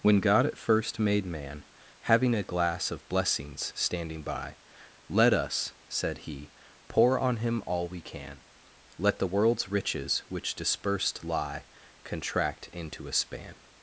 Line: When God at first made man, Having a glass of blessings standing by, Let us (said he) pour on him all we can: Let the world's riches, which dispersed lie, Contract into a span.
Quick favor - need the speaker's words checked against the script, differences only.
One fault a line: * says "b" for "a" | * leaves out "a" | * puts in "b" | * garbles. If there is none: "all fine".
all fine